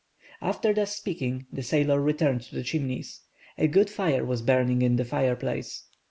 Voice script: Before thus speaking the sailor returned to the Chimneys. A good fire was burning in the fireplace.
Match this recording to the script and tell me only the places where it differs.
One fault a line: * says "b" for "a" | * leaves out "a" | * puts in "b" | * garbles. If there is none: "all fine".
* says "After" for "Before"